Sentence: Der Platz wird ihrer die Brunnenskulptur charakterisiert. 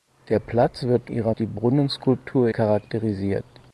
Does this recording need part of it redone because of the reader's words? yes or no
no